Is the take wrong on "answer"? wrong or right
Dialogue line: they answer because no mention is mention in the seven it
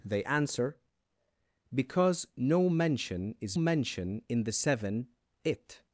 right